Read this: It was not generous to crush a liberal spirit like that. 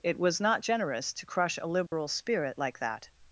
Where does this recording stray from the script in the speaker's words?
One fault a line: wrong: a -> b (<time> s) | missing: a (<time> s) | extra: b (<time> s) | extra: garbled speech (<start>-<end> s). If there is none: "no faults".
no faults